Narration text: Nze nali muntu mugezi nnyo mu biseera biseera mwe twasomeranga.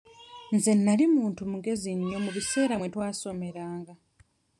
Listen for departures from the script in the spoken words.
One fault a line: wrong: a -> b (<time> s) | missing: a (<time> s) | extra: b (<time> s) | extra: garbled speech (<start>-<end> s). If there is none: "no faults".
missing: biseera (2.8 s)